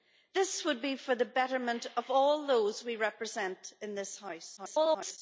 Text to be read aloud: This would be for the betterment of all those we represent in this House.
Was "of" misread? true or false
false